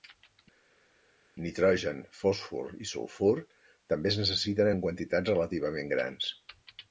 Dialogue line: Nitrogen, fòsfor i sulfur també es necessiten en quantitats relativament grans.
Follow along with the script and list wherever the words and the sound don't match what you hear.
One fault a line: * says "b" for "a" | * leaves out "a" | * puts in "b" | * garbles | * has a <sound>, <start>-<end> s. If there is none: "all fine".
all fine